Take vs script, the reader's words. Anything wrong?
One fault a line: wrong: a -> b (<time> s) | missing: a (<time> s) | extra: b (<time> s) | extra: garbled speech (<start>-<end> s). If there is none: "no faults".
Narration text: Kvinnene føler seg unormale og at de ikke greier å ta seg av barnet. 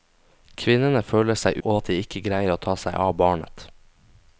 missing: unormale (1.6 s)